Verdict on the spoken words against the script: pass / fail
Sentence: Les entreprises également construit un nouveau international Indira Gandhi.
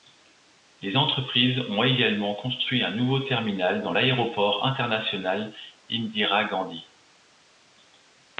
fail